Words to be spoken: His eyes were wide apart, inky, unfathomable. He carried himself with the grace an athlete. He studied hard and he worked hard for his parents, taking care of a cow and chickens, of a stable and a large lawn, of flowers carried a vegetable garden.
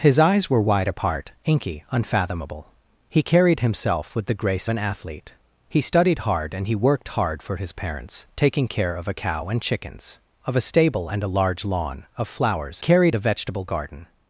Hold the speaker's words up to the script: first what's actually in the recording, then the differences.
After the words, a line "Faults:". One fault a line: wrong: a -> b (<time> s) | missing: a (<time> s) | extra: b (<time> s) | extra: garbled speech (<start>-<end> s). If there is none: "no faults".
His eyes were wide apart, inky, unfathomable. He carried himself with the grace an athlete. He studied hard and he worked hard for his parents, taking care of a cow and chickens, of a stable and a large lawn, of flowers carried a vegetable garden.
Faults:
no faults